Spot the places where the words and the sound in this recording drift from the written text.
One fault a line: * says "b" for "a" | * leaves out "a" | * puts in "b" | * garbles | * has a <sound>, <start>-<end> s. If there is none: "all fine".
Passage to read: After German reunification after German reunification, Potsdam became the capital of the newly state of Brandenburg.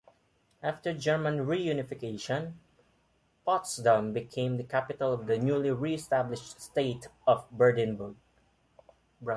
* leaves out "after German reunification"
* puts in "re established"